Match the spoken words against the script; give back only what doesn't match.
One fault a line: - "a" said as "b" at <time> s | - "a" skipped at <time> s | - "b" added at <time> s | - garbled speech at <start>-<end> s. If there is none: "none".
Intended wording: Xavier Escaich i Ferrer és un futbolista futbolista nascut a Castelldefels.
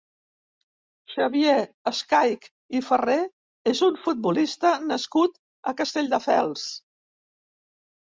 - "futbolista" skipped at 4.8 s